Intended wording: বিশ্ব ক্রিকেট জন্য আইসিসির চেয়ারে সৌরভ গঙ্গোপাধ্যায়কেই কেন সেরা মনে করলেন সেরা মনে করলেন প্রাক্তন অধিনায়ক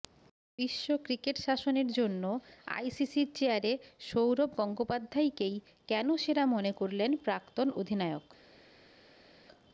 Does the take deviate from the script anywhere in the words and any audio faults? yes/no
yes